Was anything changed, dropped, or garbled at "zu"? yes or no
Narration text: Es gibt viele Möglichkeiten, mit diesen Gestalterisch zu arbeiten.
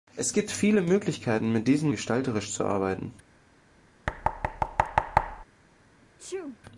no